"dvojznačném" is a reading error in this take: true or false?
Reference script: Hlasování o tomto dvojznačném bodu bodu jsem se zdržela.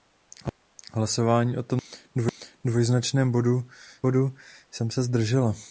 false